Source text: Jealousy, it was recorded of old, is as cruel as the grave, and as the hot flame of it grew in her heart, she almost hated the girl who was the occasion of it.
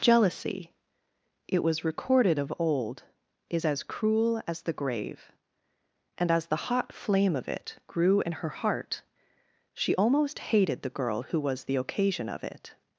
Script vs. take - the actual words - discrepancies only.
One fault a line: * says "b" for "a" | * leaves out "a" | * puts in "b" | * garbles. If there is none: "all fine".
all fine